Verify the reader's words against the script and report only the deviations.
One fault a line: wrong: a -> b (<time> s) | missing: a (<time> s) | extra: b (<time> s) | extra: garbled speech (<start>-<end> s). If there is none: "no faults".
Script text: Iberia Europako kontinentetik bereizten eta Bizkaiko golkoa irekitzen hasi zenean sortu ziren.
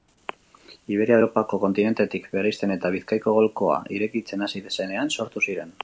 no faults